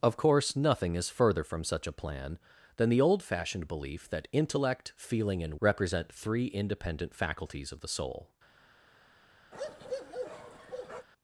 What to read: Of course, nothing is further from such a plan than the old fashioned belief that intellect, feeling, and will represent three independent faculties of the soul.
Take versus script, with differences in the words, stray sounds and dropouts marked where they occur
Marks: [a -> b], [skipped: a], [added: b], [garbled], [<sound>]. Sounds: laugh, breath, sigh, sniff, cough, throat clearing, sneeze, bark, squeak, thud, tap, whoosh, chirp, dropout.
Of course, nothing is further from such a plan than the old fashioned belief that intellect, feeling, and [skipped: will] represent three independent faculties of the soul. [bark]